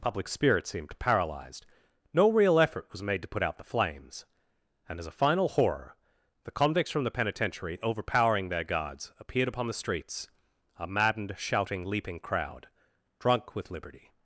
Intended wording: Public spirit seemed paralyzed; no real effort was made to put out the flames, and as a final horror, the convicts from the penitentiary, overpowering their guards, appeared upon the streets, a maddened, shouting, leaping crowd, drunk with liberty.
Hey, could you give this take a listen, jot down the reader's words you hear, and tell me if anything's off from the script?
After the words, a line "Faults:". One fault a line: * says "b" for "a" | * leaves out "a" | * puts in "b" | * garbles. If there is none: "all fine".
Public spirit seemed paralyzed; no real effort was made to put out the flames, and as a final horror, the convicts from the penitentiary, overpowering their guards, appeared upon the streets, a maddened, shouting, leaping crowd, drunk with liberty.
Faults:
all fine